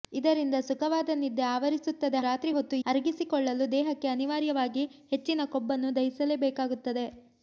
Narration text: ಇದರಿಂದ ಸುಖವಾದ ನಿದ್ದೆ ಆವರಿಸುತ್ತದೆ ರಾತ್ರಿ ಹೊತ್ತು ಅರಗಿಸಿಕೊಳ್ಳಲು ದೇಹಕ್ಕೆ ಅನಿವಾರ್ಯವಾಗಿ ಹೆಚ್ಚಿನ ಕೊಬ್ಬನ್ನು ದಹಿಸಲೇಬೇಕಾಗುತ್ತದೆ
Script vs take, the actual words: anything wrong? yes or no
no